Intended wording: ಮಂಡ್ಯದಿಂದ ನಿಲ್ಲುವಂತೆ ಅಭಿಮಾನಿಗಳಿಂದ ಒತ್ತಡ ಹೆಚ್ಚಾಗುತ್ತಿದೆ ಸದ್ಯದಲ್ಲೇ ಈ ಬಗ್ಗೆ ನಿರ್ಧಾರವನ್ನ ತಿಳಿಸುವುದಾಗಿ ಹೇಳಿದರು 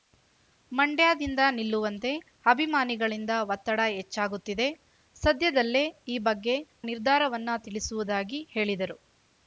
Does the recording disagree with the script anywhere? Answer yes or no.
no